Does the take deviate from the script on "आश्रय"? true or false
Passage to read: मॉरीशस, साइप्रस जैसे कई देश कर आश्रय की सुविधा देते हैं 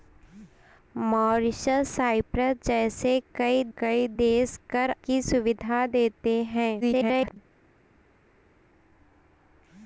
true